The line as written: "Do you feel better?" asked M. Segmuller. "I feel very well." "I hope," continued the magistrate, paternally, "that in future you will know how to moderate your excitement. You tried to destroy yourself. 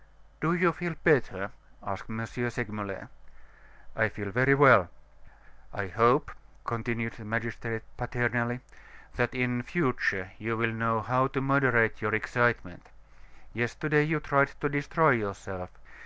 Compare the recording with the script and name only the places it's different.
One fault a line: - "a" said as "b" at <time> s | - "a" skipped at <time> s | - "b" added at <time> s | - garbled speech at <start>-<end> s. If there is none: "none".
- "Yesterday" added at 13.5 s